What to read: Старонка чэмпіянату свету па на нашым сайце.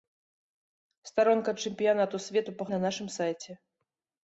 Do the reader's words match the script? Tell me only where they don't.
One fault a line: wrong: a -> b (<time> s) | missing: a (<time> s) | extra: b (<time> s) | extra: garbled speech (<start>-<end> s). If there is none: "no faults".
no faults